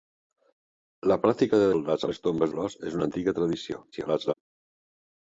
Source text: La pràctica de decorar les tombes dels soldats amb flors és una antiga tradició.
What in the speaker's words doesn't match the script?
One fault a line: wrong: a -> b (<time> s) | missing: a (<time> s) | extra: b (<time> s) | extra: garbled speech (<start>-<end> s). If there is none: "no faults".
wrong: decorar -> soldats (1.8 s)
missing: dels soldats amb (2.5 s)
extra: garbled speech (3.9-4.3 s)